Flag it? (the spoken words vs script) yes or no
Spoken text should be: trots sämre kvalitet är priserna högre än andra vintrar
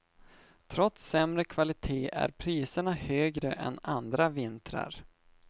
no